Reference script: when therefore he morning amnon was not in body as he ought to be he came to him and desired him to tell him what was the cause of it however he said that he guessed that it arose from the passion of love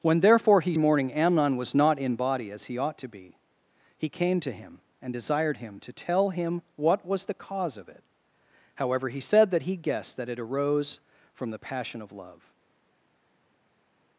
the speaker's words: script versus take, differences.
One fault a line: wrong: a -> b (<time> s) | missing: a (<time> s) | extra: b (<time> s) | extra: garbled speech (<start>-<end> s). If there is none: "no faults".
no faults